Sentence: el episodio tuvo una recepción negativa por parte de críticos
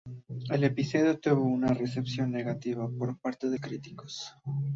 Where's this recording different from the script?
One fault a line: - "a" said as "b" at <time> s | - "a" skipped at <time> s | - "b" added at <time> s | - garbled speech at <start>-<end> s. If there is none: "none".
none